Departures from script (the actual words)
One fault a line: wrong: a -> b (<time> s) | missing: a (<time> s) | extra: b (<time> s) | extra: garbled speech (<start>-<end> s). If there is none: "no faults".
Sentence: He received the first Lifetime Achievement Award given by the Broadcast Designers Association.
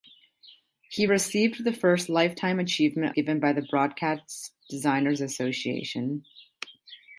missing: Award (3.2 s)